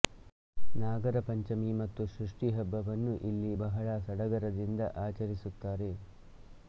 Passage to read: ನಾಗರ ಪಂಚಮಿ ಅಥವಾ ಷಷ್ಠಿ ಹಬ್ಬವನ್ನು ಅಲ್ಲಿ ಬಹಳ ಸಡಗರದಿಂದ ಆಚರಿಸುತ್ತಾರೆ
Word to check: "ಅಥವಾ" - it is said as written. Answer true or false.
false